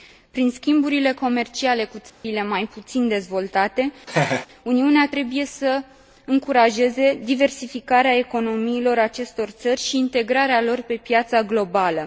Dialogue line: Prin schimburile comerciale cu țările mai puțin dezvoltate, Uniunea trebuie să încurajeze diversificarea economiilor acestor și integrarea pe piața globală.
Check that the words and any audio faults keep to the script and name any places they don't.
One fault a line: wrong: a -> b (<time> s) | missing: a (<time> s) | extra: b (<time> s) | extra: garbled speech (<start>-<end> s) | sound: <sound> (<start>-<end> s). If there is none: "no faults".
sound: dropout (2.1-2.2 s)
sound: laugh (4.1-4.5 s)
extra: țări (9.5 s)
extra: lor (10.6 s)